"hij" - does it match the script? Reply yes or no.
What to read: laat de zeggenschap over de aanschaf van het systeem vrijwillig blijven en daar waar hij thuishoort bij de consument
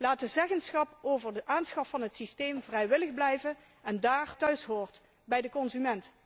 no